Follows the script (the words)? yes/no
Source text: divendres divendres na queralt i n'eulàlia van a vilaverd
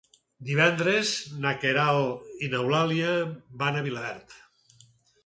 no